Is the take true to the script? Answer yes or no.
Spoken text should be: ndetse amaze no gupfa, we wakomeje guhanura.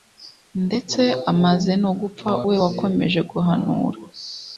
yes